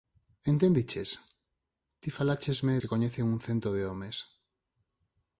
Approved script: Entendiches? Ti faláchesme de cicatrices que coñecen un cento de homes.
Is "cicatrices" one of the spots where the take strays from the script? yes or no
yes